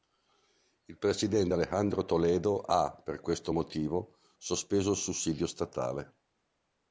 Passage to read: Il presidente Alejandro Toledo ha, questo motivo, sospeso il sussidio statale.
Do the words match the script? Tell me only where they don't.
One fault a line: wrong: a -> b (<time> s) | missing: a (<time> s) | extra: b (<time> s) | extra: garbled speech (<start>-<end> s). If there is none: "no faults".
extra: per (3.0 s)